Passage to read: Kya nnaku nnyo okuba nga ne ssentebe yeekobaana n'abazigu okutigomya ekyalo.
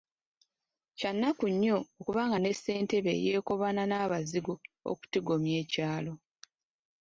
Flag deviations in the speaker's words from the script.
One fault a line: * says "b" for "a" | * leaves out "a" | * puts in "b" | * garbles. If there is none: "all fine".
all fine